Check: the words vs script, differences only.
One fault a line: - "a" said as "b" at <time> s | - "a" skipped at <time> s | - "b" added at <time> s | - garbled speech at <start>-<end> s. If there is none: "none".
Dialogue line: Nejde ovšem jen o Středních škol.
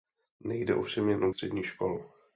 none